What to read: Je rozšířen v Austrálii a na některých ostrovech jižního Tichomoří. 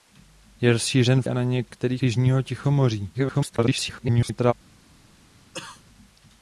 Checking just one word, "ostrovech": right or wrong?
wrong